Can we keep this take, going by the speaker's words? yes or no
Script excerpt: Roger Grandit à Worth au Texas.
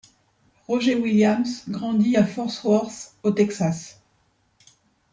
no